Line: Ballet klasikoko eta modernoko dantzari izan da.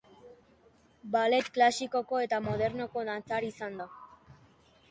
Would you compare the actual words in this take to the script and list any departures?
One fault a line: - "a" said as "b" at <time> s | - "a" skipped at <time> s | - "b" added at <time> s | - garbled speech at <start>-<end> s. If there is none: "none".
none